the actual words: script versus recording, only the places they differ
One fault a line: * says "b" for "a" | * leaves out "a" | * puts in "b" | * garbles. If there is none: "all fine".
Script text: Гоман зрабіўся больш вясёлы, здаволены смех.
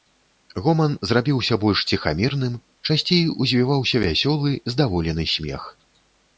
* puts in "ціхамірным часцей узвіваўся"